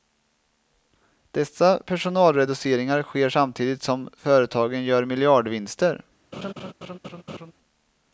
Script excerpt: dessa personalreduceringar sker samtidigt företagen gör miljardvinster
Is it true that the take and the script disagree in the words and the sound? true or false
true